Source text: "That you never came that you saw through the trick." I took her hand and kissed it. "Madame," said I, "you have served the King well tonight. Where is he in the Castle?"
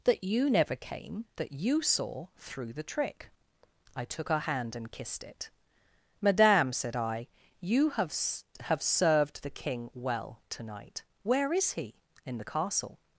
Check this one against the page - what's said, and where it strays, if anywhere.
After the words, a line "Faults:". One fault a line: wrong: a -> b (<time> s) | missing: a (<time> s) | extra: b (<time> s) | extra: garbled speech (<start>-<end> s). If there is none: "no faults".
"That you never came that you saw through the trick." I took her hand and kissed it. "Madame," said I, "you have have served the King well tonight. Where is he in the Castle?"
Faults:
extra: have (8.6 s)